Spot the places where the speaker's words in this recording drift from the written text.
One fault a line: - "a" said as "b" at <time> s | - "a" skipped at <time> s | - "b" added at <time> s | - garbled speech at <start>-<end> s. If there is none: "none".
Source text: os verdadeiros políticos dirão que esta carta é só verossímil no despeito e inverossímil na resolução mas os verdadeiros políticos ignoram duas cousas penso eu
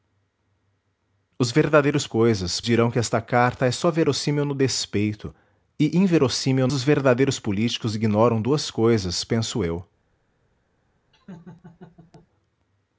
- "políticos" said as "cousas" at 2.1 s
- "na resolução mas" skipped at 6.7 s